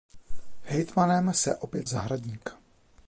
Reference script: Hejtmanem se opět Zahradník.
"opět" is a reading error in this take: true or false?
false